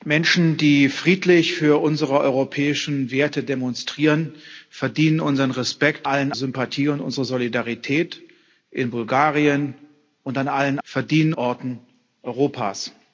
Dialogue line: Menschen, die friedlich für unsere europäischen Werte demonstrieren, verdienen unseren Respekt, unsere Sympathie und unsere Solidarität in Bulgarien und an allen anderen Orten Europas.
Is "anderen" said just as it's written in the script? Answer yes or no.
no